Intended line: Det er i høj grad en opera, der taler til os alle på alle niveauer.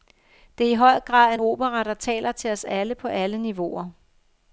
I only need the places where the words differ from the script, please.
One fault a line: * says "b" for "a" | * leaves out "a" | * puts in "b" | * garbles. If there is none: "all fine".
all fine